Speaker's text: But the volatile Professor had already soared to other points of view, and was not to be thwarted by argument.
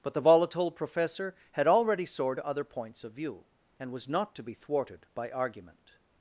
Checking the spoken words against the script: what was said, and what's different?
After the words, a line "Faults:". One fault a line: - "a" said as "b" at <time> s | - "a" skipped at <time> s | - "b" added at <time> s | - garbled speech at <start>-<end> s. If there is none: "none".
But the volatile Professor had already soared to other points of view, and was not to be thwarted by argument.
Faults:
none